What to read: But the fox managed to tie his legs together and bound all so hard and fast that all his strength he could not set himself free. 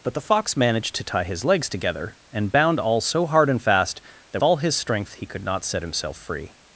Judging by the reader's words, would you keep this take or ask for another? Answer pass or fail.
pass